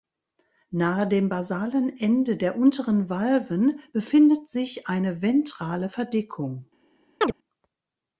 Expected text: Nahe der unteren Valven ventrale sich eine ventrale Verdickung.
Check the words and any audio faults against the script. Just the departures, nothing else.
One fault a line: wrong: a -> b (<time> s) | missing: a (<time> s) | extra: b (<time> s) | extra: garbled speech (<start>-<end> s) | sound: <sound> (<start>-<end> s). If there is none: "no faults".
extra: dem basalen Ende (1.1 s)
wrong: ventrale -> befindet (3.9 s)
sound: chirp (7.2-7.3 s)